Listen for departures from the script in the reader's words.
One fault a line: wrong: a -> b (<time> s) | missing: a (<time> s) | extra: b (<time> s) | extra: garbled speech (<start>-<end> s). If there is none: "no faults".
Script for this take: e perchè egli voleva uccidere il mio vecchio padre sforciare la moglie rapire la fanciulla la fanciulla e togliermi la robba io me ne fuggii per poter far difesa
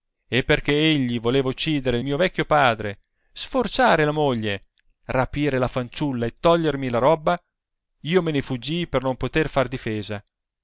missing: la fanciulla (6.3 s)
extra: non (9.0 s)